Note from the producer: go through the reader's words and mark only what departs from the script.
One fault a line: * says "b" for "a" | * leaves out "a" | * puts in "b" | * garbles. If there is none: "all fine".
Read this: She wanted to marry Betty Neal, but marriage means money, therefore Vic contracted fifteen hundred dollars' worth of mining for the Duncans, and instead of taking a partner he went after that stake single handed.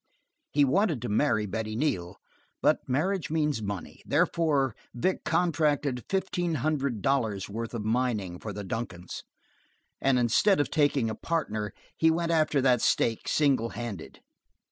* says "He" for "She"